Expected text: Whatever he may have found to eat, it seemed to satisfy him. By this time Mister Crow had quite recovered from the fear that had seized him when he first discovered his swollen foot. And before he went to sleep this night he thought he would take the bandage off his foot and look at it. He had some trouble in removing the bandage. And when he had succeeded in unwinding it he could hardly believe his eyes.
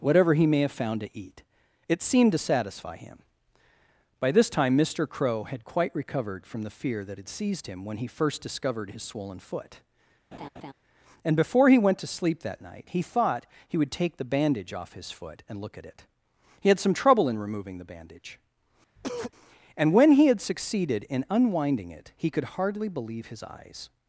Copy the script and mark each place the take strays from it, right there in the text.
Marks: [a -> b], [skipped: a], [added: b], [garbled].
Whatever he may have found to eat, it seemed to satisfy him. By this time Mister Crow had quite recovered from the fear that had seized him when he first discovered his swollen foot. And before he went to sleep [this -> that] night he thought he would take the bandage off his foot and look at it. He had some trouble in removing the bandage. And when he had succeeded in unwinding it he could hardly believe his eyes.